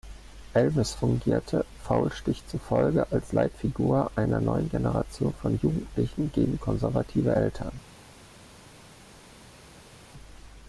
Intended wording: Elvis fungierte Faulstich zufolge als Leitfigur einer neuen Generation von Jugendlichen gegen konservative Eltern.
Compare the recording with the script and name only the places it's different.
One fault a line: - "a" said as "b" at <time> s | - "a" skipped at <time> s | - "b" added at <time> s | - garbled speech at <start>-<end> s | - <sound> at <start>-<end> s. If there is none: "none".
none